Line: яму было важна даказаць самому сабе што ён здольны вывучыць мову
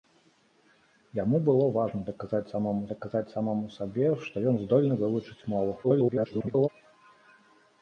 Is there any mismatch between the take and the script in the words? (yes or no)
yes